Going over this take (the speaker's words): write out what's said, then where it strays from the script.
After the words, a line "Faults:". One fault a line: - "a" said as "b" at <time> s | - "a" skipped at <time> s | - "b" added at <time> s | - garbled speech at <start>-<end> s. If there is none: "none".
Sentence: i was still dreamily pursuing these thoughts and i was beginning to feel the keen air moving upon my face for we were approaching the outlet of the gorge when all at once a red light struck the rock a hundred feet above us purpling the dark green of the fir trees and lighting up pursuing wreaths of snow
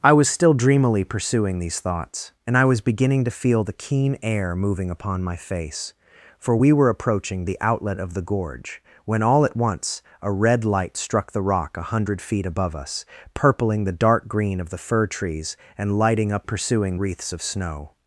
i was still dreamily pursuing these thoughts and i was beginning to feel the keen air moving upon my face for we were approaching the outlet of the gorge when all at once a red light struck the rock a hundred feet above us purpling the dark green of the fir trees and lighting up pursuing wreaths of snow
Faults:
none